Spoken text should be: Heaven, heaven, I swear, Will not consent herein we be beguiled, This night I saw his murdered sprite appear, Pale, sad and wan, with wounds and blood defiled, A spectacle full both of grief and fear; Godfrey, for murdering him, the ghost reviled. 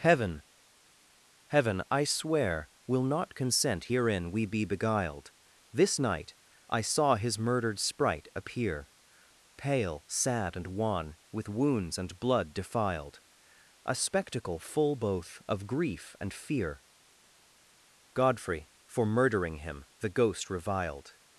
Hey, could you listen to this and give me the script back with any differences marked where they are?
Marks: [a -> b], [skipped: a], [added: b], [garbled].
Heaven, heaven, I swear, Will not consent herein we be beguiled, This night I saw his murdered sprite appear, Pale, sad and wan, with wounds and blood defiled, A spectacle full both of grief and fear; Godfrey, for murdering him, the ghost reviled.